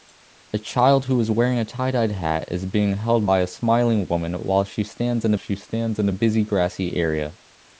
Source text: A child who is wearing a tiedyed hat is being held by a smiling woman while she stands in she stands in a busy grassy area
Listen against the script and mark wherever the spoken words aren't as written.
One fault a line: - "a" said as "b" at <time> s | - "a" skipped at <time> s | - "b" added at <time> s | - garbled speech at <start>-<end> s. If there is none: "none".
none